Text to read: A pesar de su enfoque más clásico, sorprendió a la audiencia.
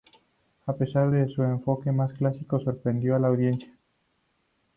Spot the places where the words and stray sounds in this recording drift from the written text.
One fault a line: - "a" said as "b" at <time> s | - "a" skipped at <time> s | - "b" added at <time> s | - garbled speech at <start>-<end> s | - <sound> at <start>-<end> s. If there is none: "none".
none